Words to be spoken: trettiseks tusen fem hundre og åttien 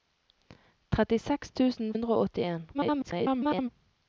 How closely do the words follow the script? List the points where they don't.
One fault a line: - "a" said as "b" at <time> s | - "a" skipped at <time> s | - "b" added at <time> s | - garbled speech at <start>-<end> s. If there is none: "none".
- "fem" skipped at 1.9 s
- garbled speech at 2.7-3.7 s